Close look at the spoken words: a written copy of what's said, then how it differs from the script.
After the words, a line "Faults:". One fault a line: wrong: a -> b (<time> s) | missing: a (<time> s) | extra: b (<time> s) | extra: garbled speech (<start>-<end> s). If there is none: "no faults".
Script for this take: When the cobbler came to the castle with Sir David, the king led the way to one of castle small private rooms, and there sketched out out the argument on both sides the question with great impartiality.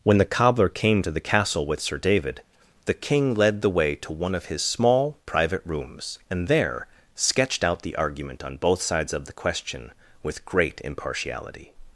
When the cobbler came to the castle with Sir David, the king led the way to one of his small private rooms, and there sketched out the argument on both sides of the question with great impartiality.
Faults:
wrong: castle -> his (4.5 s)
missing: out (7.8 s)
extra: of (9.1 s)